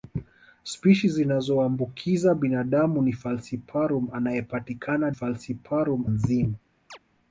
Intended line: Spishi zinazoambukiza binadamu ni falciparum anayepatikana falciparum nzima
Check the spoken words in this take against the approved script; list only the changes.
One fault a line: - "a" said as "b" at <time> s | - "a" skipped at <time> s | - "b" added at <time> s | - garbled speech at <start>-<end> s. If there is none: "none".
none